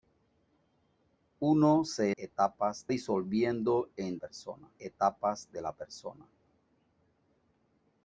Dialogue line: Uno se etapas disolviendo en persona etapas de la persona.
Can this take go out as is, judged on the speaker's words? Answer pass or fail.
pass